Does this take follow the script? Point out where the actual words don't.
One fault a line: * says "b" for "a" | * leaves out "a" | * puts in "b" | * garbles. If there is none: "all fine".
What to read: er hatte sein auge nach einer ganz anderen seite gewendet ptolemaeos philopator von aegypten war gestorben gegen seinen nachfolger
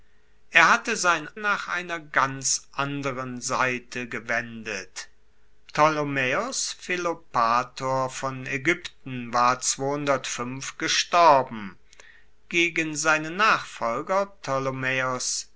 * leaves out "auge"